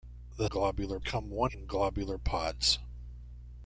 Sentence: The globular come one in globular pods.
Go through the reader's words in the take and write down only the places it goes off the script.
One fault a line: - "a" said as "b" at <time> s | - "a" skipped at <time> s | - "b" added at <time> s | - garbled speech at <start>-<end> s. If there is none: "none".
none